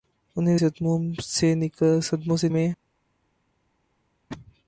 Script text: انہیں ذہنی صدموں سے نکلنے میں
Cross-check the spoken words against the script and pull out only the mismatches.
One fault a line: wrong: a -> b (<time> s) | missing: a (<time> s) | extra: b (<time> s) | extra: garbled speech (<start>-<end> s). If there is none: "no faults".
missing: ذہنی (0.6 s)
missing: نکلنے (2.5 s)